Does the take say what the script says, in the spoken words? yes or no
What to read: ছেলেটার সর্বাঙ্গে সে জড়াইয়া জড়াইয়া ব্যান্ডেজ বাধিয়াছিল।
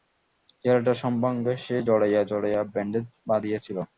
yes